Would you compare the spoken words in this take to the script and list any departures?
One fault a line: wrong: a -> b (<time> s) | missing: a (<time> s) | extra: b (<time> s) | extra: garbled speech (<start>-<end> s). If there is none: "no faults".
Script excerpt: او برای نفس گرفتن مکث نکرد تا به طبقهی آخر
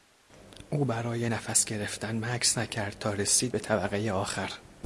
extra: رسید (3.1 s)